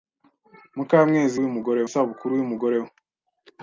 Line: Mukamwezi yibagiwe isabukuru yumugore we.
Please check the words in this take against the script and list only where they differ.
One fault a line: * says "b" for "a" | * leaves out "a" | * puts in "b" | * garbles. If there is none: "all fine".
* says "yumugore" for "yibagiwe"